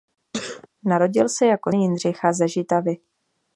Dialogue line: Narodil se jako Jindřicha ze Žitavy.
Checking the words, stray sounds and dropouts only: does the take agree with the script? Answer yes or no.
no